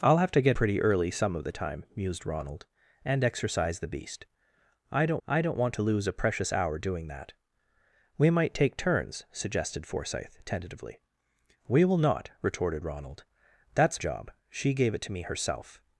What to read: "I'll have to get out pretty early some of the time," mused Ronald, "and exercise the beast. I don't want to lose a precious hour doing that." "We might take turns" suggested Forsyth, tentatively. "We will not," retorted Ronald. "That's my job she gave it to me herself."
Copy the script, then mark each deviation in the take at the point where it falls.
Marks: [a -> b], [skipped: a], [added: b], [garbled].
"I'll have to get [skipped: out] pretty early some of the time," mused Ronald, "and exercise the beast. I don't [added: I don't] want to lose a precious hour doing that." "We might take turns" suggested Forsyth, tentatively. "We will not," retorted Ronald. "That's [skipped: my] job she gave it to me herself."